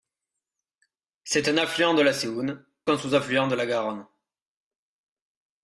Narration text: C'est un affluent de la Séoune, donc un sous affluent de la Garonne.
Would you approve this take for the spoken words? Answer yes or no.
no